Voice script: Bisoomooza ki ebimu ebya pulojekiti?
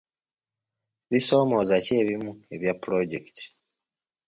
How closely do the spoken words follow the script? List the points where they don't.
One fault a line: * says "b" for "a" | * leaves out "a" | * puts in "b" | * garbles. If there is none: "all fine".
all fine